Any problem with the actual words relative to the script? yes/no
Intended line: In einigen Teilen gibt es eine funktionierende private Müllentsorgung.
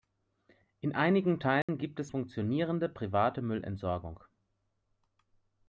yes